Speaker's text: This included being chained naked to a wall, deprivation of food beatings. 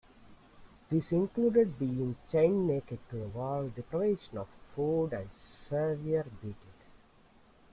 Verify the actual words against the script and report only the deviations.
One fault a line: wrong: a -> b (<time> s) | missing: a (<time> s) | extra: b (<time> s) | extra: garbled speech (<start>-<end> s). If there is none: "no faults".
extra: and severe (5.1 s)